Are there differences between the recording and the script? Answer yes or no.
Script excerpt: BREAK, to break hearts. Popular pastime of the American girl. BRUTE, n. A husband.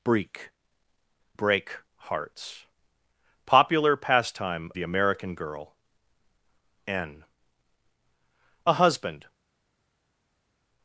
yes